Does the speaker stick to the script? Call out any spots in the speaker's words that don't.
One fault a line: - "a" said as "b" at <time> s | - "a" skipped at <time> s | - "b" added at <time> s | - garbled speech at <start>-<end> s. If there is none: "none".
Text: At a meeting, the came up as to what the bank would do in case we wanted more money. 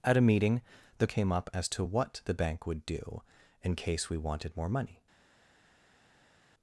none